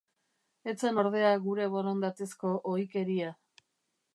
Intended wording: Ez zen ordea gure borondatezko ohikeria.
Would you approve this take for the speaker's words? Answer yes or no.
yes